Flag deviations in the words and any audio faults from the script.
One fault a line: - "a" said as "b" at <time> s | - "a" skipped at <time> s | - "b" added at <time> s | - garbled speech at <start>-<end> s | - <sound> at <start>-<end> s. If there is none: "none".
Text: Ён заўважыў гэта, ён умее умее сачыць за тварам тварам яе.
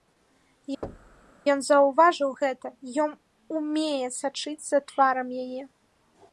- thud at 0.8-1.3 s
- "умее" skipped at 4.1 s
- "тварам" skipped at 5.3 s